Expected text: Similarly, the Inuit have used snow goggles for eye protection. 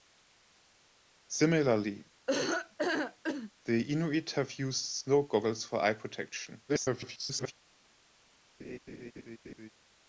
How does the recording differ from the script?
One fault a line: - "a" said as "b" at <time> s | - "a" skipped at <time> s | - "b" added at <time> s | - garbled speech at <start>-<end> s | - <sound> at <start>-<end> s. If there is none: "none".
- laugh at 2.3-3.5 s
- garbled speech at 6.7-7.5 s
- laugh at 8.6-9.7 s